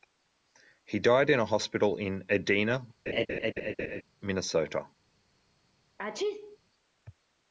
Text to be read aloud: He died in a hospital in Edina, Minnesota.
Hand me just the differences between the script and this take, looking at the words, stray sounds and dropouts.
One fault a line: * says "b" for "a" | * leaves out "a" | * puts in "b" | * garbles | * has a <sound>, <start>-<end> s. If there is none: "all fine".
* has a laugh, 3.1-4.0 s
* has a sneeze, 6.0-6.6 s